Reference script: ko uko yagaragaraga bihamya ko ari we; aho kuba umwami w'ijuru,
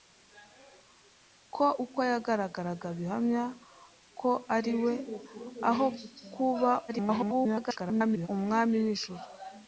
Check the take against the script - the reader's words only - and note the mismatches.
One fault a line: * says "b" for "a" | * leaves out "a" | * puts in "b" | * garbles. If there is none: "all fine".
* garbles